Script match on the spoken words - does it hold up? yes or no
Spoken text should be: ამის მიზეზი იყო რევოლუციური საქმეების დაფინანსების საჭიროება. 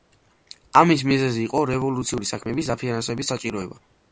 yes